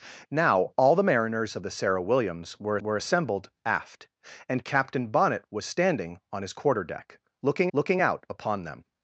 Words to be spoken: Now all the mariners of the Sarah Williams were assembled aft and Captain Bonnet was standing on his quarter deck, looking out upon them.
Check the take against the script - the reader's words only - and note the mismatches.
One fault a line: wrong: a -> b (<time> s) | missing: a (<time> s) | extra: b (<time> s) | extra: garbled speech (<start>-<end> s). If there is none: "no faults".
extra: were (2.8 s)
extra: looking (7.7 s)